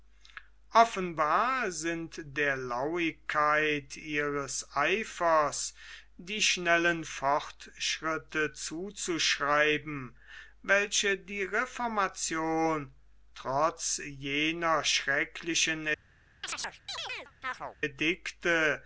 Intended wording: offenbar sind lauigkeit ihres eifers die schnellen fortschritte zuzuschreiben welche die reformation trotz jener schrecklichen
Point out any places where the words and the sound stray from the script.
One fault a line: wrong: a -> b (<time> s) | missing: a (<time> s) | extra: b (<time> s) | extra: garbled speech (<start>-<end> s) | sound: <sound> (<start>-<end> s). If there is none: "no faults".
extra: der (2.4 s)
sound: chirp (16.4-17.8 s)